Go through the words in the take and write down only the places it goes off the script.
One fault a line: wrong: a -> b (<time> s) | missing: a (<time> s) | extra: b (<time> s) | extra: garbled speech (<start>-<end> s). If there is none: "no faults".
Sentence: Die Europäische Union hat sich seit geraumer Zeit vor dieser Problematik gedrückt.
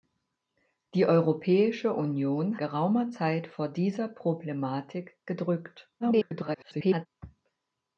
missing: hat sich seit (2.6 s)
extra: garbled speech (6.0-7.1 s)